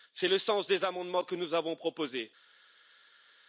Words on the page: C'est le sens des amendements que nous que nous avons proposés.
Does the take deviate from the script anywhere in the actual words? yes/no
yes